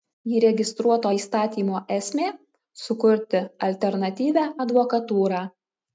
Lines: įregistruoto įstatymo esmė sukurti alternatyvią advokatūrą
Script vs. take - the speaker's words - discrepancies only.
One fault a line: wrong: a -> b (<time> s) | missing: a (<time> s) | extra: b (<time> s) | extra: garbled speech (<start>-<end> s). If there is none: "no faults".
no faults